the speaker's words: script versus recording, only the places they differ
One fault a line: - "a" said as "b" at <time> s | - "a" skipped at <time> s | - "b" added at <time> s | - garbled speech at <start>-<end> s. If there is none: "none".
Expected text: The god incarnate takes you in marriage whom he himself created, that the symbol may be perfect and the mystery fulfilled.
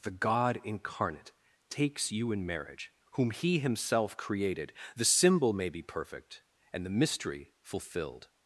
- "that" skipped at 4.7 s